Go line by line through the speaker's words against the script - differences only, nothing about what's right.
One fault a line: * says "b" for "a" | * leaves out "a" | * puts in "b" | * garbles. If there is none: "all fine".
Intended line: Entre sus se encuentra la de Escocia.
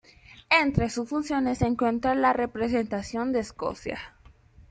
* puts in "funciones"
* puts in "representación"